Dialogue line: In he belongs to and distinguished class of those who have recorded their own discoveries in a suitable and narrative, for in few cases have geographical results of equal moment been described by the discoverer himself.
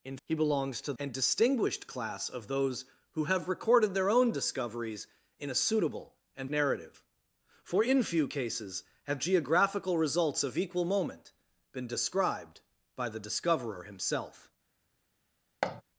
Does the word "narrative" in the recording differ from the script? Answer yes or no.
no